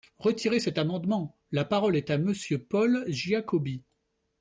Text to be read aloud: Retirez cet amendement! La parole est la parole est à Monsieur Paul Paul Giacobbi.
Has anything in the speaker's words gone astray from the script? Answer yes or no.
yes